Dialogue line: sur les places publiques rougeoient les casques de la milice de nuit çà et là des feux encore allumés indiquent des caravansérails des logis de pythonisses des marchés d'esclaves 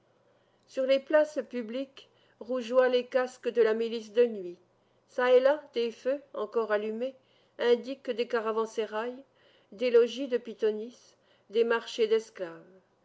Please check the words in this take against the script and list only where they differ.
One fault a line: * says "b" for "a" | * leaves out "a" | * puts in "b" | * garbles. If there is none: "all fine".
all fine